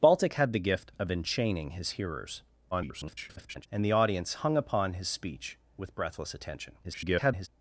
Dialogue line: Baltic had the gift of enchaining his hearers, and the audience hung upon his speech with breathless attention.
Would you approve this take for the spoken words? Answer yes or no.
no